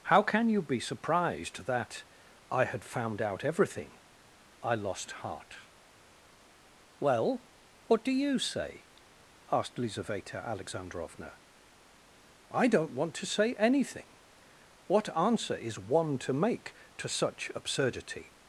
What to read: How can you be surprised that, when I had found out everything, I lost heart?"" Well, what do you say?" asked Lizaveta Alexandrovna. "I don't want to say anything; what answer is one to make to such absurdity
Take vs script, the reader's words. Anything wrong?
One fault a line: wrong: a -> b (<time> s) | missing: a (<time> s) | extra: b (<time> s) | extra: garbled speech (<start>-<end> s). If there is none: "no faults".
missing: when (2.0 s)